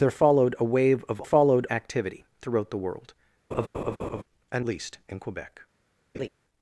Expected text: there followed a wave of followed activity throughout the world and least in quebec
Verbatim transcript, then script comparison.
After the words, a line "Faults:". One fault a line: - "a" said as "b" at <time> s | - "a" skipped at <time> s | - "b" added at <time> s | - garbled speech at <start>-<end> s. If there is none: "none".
there followed a wave of followed activity throughout the world and least in quebec
Faults:
none